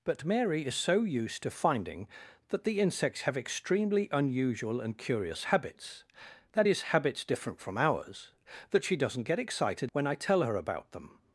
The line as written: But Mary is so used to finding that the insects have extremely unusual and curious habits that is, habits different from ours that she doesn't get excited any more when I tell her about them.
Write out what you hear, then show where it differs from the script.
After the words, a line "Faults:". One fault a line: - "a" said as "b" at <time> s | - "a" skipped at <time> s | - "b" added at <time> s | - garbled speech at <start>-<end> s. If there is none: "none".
But Mary is so used to finding that the insects have extremely unusual and curious habits that is, habits different from ours that she doesn't get excited when I tell her about them.
Faults:
- "any more" skipped at 9.9 s